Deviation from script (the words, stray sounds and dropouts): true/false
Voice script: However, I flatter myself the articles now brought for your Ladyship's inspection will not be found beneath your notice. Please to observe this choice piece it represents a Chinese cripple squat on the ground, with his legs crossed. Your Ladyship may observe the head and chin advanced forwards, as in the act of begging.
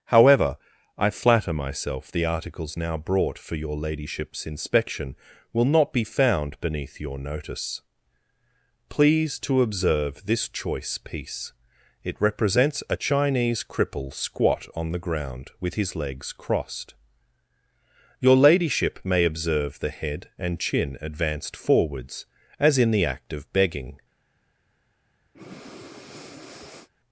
true